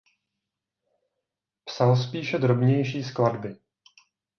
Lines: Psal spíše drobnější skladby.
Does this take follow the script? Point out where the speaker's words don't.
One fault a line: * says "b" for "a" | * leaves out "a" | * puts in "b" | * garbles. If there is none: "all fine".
all fine